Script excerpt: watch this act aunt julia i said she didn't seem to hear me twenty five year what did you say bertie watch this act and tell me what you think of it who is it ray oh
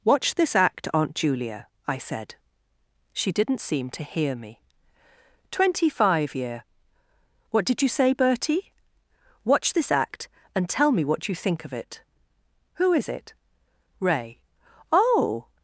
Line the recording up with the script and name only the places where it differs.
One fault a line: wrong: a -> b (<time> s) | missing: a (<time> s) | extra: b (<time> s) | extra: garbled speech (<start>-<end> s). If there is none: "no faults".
no faults